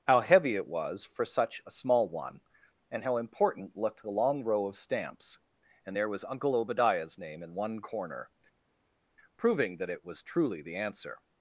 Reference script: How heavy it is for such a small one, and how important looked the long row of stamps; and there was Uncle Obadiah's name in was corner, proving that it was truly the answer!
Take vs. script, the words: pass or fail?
fail